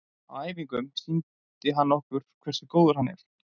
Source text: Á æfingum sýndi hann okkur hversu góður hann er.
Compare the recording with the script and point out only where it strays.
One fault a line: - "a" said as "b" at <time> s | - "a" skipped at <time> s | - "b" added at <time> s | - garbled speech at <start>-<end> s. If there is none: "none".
none